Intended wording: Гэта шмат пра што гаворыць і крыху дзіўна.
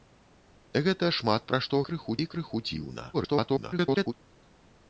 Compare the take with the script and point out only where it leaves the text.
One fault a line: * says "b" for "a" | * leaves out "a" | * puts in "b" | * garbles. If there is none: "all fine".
* says "крыху" for "гаворыць"
* garbles